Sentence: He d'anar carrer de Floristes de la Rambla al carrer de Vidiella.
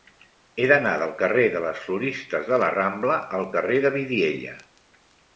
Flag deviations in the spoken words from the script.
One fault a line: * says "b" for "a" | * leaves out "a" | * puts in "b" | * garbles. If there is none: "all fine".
* puts in "del"
* puts in "les"